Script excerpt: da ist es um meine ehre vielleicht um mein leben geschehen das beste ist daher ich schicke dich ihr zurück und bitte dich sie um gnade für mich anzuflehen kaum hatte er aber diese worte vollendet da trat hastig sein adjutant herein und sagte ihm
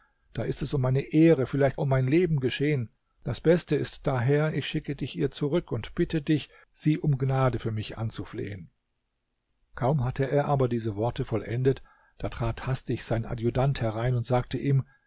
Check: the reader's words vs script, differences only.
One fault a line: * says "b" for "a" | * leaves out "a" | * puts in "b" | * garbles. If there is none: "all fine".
all fine